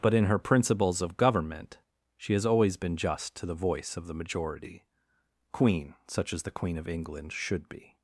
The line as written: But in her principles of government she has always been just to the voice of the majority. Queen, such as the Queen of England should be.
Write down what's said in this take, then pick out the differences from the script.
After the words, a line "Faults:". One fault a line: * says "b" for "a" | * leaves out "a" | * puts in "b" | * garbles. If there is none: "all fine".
But in her principles of government she has always been just to the voice of the majority. Queen, such as the Queen of England should be.
Faults:
all fine